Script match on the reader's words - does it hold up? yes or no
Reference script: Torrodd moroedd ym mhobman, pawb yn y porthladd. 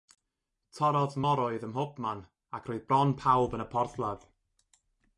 no